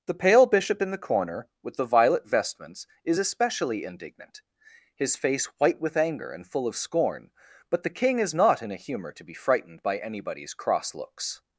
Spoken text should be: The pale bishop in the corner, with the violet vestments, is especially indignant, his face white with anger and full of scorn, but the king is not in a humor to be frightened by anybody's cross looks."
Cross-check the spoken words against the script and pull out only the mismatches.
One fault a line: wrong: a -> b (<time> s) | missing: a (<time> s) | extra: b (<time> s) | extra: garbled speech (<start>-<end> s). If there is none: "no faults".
no faults